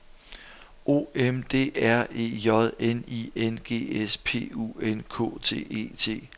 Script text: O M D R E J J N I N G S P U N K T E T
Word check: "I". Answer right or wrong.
right